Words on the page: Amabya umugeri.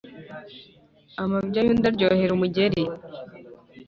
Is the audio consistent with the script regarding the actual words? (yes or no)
no